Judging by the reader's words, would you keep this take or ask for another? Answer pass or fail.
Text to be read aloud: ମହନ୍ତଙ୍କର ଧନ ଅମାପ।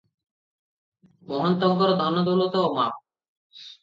fail